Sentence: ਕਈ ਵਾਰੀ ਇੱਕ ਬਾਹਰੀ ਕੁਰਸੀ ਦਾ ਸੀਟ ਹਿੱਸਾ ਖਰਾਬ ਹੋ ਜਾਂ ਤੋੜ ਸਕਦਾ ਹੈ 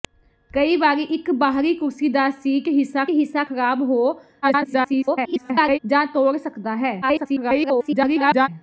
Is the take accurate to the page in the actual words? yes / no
no